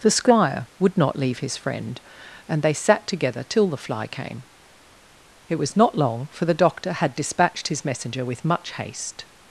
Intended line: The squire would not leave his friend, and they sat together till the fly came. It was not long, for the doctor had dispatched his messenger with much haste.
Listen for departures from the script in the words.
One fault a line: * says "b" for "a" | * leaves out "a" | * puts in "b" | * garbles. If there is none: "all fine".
all fine